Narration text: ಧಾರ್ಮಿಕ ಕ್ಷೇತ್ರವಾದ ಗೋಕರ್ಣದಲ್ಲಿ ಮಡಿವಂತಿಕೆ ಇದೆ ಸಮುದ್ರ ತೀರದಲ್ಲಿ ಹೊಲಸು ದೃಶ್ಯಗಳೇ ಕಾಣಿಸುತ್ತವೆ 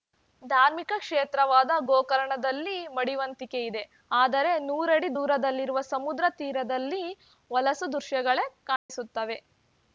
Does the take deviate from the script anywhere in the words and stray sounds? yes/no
yes